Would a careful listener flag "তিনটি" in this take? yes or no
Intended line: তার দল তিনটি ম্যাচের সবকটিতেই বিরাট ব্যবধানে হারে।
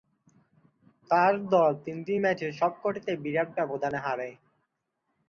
no